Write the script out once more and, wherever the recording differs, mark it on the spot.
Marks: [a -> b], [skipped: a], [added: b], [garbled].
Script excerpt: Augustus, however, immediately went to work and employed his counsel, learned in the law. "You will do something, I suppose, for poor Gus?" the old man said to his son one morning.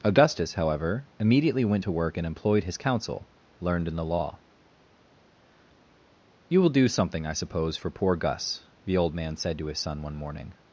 Augustus, however, immediately went to work and employed his counsel, learned in the law. "You will do something, I suppose, for poor Gus?" the old man said to his son one morning.